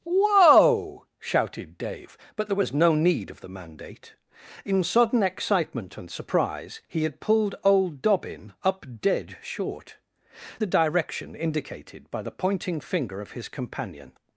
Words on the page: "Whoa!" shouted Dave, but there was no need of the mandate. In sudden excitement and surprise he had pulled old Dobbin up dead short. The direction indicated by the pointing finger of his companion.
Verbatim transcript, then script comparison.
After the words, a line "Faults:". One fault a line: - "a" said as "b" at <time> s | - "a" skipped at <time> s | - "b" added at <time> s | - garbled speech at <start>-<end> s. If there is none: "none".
"Whoa!" shouted Dave, but there was no need of the mandate. In sudden excitement and surprise he had pulled old Dobbin up dead short. The direction indicated by the pointing finger of his companion.
Faults:
none